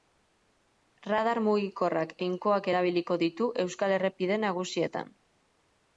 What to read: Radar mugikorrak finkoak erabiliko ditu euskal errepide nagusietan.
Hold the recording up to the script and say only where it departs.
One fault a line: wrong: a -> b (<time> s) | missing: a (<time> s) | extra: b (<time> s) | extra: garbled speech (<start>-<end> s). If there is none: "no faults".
no faults